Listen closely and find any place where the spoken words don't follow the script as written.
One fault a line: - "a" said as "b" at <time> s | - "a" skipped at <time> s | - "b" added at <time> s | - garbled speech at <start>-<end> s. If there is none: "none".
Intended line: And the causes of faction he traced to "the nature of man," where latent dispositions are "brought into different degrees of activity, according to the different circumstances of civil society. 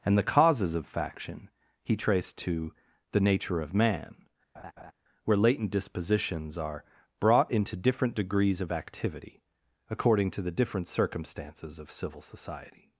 none